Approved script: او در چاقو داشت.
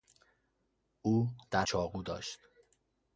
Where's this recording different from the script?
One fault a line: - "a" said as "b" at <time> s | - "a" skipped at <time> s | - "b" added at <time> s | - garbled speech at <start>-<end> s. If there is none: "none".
none